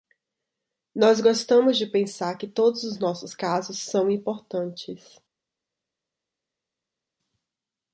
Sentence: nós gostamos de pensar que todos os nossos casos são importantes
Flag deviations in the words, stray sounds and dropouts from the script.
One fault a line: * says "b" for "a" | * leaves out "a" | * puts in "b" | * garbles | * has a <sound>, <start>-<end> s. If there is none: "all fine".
all fine